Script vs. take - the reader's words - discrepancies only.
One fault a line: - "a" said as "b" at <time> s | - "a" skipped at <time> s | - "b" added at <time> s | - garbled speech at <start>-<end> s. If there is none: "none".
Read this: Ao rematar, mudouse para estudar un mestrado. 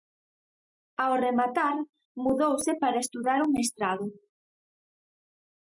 none